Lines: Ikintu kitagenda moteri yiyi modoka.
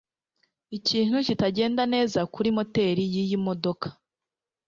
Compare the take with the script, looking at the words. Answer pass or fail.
fail